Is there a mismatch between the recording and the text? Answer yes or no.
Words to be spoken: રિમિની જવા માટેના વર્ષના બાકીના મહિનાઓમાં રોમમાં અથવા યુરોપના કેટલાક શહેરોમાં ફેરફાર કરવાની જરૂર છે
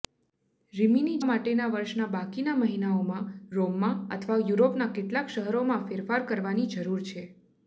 yes